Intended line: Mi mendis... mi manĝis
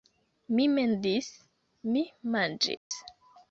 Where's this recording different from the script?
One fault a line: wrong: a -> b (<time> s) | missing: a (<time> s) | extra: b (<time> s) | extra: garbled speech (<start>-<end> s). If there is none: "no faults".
no faults